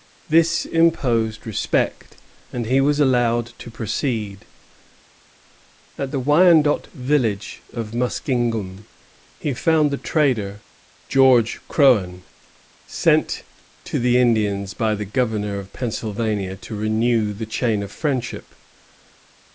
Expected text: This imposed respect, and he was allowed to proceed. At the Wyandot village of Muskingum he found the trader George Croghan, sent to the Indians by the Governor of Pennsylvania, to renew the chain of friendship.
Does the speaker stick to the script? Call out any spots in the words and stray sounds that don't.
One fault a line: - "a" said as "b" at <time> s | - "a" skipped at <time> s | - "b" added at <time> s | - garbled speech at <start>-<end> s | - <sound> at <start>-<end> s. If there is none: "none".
none